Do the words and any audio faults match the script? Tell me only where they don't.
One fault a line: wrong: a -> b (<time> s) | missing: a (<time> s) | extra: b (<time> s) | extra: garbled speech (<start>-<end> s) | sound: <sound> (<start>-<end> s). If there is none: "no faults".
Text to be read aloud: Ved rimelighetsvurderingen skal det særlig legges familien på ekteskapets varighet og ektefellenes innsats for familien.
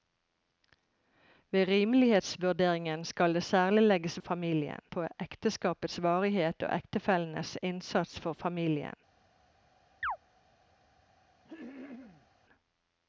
sound: chirp (10.0-10.2 s)
sound: throat clearing (11.4-12.3 s)